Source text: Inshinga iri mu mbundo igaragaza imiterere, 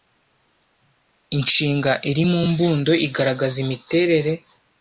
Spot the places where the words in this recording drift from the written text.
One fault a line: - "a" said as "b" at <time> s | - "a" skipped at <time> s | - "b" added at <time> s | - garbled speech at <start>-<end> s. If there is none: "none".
none